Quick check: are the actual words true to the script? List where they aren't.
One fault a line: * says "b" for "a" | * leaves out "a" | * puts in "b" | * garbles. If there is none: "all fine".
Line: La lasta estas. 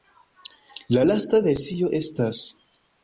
* puts in "versio"